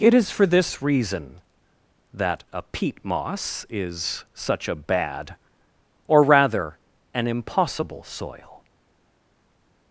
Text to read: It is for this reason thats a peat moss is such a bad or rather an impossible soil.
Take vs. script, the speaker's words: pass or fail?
fail